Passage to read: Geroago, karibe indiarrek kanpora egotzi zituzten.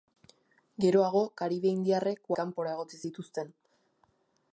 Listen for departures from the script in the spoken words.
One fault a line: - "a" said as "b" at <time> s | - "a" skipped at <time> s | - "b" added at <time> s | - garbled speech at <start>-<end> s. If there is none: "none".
none